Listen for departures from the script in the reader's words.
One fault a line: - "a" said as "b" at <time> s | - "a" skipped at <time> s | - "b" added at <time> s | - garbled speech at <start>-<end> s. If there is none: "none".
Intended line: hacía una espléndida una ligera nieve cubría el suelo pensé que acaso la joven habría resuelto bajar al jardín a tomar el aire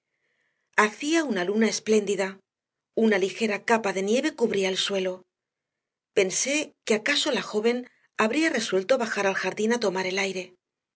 - "luna" added at 1.4 s
- "capa de" added at 3.6 s